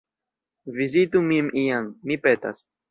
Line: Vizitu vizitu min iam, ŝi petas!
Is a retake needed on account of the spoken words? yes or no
yes